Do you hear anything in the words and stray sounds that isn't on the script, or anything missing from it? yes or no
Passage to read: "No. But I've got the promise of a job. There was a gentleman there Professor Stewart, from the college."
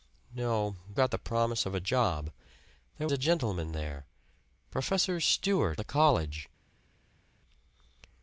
yes